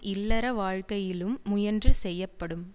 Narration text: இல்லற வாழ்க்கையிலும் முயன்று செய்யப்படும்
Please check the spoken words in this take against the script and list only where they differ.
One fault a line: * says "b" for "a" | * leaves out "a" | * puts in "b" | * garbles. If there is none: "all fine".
all fine